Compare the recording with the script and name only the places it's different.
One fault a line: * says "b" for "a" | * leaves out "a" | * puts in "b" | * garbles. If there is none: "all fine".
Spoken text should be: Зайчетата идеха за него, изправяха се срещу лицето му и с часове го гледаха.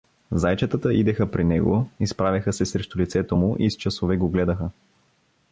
* says "при" for "за"